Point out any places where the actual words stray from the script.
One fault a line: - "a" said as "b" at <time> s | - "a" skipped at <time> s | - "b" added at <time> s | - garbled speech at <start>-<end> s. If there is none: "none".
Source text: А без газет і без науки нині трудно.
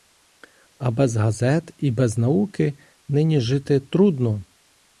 - "жити" added at 3.4 s